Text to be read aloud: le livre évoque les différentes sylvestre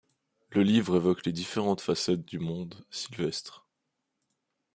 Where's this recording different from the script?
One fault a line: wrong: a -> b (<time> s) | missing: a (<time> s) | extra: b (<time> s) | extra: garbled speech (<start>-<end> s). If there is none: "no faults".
extra: facettes du monde (1.8 s)